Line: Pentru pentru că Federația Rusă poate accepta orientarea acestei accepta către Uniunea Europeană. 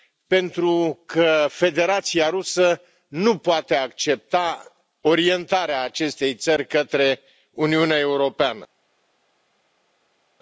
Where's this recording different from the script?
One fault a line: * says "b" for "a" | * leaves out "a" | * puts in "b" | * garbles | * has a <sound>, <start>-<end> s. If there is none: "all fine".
* leaves out "pentru"
* puts in "nu"
* says "țări" for "accepta"